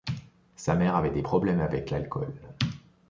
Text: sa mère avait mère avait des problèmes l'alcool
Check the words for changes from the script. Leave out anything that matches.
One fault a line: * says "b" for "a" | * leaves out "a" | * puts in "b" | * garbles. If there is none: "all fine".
* leaves out "mère avait"
* puts in "avec"